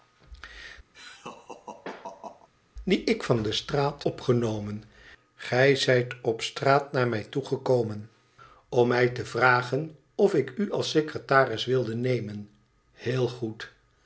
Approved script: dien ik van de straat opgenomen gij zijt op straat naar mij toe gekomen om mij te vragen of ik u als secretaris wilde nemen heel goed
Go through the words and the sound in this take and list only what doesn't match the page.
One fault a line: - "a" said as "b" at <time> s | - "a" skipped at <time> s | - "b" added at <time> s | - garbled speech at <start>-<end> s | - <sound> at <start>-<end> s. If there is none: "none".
- laugh at 0.9-2.5 s